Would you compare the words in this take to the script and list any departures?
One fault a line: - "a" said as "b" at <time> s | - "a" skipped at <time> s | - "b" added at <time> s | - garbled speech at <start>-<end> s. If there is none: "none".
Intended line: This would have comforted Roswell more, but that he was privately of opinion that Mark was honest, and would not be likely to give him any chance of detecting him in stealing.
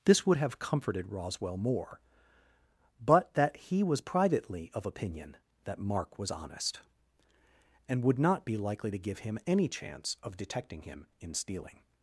none